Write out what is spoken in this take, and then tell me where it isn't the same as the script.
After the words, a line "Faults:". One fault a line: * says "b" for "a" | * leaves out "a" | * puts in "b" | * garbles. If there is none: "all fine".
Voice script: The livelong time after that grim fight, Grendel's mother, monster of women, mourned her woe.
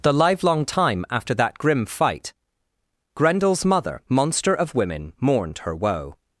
The livelong time after that grim fight, Grendel's mother, monster of women, mourned her woe.
Faults:
all fine